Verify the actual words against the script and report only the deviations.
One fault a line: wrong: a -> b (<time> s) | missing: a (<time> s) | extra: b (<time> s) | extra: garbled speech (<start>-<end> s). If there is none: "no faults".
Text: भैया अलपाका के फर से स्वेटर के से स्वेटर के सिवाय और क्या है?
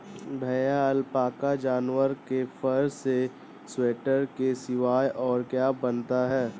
extra: जानवर (1.6 s)
missing: से स्वेटर के (4.5 s)
extra: बनता (5.8 s)